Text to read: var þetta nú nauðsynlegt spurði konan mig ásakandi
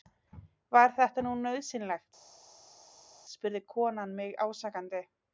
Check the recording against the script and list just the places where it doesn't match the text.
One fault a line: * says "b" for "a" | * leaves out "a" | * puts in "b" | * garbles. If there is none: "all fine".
all fine